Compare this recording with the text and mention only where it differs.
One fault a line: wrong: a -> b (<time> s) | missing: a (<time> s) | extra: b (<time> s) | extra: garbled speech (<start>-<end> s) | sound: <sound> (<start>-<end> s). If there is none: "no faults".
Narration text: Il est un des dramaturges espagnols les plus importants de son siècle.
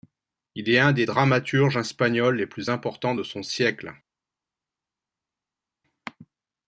no faults